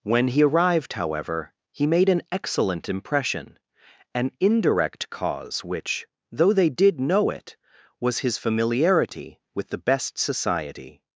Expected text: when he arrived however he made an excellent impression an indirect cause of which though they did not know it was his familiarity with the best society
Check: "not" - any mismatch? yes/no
yes